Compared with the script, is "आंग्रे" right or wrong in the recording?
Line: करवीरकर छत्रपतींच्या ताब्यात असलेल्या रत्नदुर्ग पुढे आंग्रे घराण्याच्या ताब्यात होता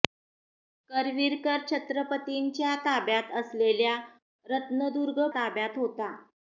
wrong